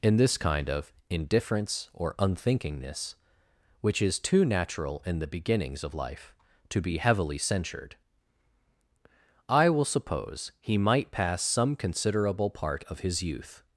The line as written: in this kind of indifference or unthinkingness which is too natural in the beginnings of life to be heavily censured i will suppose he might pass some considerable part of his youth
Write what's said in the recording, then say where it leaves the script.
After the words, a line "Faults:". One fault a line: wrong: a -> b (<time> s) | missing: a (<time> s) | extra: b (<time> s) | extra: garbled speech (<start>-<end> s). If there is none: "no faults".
in this kind of indifference or unthinkingness which is too natural in the beginnings of life to be heavily censured i will suppose he might pass some considerable part of his youth
Faults:
no faults